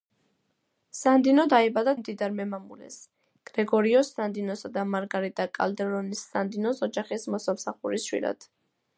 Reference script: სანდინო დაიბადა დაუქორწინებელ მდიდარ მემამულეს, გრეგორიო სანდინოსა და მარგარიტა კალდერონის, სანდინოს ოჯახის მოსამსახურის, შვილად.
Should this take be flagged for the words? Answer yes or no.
yes